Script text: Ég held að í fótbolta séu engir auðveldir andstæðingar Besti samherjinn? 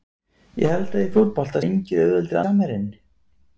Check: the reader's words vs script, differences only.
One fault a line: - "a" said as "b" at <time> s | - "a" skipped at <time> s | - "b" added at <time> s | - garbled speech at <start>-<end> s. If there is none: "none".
- "séu" skipped at 1.6 s
- "andstæðingar Besti" skipped at 2.4 s